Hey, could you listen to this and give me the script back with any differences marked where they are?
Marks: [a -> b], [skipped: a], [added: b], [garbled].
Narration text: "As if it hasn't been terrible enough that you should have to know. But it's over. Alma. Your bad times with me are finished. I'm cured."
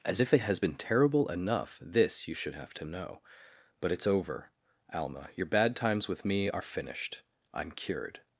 "As if it [hasn't -> has] been terrible enough [that -> this] you should have to know. But it's over. Alma. Your bad times with me are finished. I'm cured."